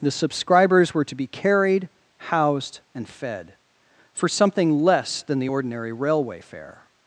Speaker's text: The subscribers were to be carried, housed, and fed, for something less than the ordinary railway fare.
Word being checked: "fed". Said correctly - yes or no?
yes